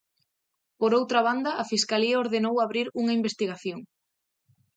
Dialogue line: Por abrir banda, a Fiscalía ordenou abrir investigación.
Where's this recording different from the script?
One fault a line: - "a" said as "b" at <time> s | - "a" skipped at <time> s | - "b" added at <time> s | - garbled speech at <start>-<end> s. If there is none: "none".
- "abrir" said as "outra" at 1.0 s
- "unha" added at 3.0 s